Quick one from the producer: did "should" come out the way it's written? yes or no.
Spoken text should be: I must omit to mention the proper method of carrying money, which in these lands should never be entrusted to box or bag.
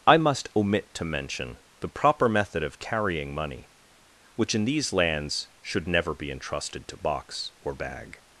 yes